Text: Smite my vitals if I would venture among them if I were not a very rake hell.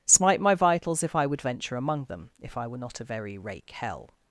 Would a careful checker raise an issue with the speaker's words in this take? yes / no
no